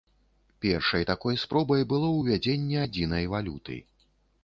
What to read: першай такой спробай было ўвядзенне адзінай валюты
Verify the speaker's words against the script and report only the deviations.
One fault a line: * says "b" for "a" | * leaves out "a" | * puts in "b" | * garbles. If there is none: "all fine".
all fine